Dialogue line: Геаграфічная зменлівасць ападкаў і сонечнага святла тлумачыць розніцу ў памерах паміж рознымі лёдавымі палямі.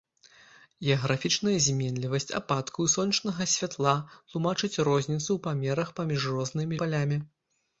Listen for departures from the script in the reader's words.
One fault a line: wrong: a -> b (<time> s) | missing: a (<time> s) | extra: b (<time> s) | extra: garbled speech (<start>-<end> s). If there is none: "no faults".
missing: лёдавымі (6.8 s)